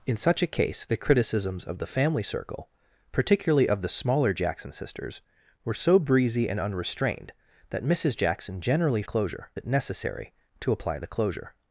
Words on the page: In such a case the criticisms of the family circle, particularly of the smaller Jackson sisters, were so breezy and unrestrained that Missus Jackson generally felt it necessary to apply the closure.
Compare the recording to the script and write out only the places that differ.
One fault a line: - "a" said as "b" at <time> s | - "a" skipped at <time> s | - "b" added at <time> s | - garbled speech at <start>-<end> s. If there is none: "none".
- "felt" said as "closure" at 9.0 s